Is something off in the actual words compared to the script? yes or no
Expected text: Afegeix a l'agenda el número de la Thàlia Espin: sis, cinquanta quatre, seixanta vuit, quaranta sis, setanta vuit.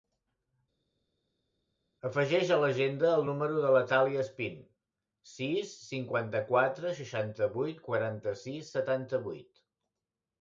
no